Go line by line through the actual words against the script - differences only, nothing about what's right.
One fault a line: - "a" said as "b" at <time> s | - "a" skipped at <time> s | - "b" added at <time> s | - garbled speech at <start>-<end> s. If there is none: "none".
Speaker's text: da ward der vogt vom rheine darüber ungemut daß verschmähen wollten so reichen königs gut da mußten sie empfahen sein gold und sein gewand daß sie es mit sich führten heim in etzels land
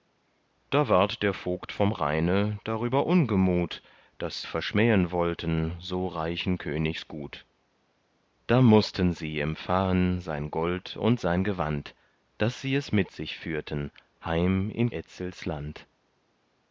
none